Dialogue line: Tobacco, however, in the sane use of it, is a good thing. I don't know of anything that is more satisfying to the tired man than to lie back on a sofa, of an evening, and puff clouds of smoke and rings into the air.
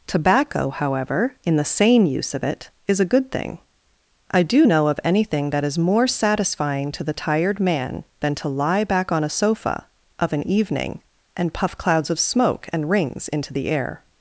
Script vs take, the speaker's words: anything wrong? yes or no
yes